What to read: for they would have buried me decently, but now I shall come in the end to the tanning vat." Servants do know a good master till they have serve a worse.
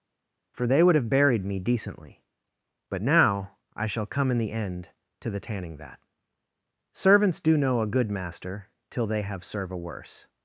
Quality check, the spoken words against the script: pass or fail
pass